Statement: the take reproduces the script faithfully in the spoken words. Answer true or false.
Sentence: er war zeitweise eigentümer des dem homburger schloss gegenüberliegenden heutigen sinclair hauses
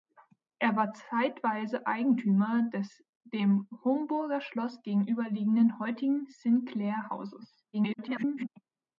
false